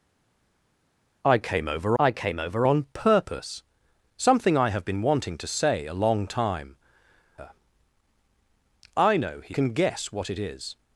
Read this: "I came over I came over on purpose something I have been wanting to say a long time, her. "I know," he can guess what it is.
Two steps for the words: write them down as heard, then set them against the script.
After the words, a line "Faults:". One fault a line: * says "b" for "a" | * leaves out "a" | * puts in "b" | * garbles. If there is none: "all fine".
"I came over I came over on purpose something I have been wanting to say a long time, her. "I know," he can guess what it is.
Faults:
all fine